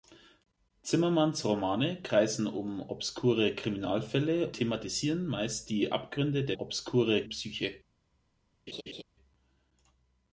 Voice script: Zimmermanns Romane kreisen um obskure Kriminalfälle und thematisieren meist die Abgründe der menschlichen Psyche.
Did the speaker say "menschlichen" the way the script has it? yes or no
no